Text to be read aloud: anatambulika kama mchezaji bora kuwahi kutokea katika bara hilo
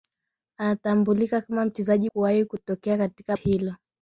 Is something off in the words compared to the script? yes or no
yes